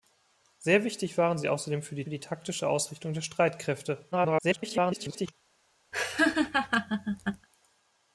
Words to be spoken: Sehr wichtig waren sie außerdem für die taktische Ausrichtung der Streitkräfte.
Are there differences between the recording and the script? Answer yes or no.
yes